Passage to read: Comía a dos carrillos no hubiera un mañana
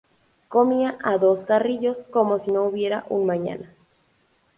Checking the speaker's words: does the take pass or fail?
fail